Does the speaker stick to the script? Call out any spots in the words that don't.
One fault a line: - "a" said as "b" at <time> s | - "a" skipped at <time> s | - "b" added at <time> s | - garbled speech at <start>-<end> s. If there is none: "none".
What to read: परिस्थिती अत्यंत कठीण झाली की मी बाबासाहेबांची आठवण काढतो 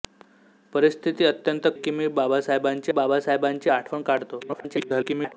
- "कठीण झाली" skipped at 1.7 s
- "बाबासाहेबांची" added at 2.9 s
- garbled speech at 4.4-5.3 s